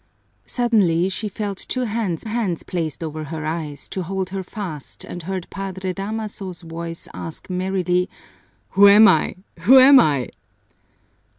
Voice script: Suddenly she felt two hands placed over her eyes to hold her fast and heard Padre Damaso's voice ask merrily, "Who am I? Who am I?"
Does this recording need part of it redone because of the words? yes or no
yes